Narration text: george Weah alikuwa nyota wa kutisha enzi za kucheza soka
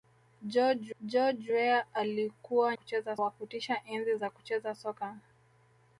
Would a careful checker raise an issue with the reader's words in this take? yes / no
yes